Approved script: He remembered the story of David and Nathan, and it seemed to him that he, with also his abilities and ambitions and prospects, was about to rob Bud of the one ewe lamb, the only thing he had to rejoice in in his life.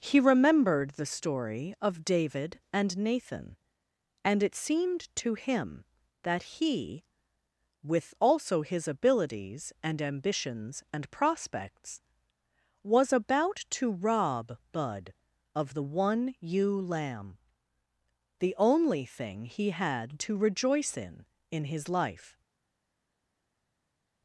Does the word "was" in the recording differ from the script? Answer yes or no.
no